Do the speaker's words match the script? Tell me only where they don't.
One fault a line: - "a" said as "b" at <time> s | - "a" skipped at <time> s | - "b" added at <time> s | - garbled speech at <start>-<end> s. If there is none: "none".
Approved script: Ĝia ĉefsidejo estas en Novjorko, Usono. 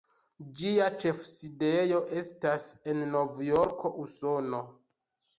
none